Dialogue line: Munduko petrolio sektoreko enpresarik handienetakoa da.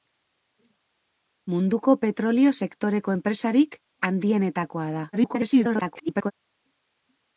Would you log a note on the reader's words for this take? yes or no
yes